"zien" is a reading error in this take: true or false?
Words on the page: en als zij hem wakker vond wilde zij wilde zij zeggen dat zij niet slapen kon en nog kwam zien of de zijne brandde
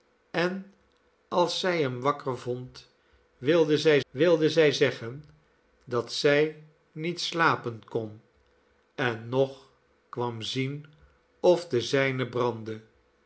false